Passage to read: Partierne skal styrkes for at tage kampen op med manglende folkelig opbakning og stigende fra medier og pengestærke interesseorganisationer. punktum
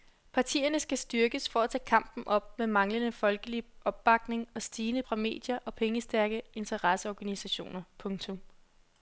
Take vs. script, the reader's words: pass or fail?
pass